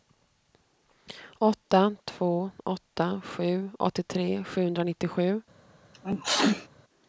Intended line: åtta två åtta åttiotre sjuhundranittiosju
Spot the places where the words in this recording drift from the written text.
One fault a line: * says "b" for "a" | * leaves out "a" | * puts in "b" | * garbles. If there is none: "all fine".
* puts in "sju"